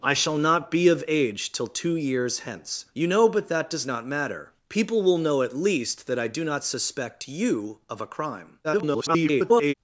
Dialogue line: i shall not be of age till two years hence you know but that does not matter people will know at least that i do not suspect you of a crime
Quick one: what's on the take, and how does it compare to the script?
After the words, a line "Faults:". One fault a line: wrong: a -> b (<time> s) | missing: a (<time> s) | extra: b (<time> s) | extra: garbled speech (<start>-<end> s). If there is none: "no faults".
i shall not be of age till two years hence you know but that does not matter people will know at least that i do not suspect you of a crime [garbled]
Faults:
extra: garbled speech (8.6-9.7 s)